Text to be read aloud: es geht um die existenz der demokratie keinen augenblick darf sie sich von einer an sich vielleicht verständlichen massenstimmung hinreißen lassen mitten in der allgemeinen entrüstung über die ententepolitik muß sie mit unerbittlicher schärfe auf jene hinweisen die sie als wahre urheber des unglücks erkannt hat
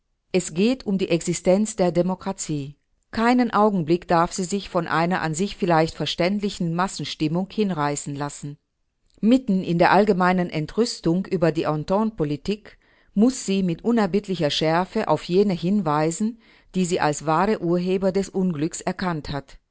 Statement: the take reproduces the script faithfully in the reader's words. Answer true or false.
true